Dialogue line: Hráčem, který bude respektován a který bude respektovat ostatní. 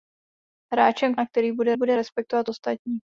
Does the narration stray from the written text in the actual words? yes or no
yes